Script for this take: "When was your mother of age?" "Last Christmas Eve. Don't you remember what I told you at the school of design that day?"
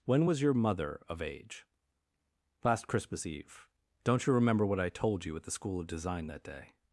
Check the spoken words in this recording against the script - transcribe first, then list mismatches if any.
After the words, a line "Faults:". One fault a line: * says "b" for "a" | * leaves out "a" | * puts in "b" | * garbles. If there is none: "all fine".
"When was your mother of age?" "Last Christmas Eve. Don't you remember what I told you at the school of design that day?"
Faults:
all fine